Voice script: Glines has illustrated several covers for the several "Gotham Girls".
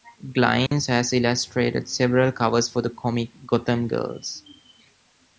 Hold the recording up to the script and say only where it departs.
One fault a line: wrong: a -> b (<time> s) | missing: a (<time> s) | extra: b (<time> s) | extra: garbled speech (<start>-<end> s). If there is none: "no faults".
wrong: several -> comic (2.9 s)